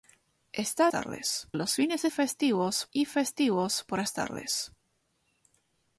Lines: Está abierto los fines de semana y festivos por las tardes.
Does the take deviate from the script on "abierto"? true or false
true